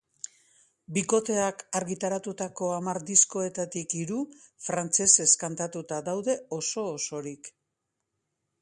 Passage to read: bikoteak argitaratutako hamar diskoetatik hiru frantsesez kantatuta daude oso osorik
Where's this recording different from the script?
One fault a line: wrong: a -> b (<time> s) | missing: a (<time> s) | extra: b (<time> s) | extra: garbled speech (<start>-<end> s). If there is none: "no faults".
no faults